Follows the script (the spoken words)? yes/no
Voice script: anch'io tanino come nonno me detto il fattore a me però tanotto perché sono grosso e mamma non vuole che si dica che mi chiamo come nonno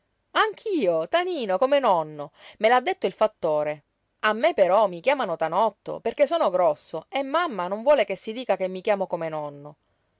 no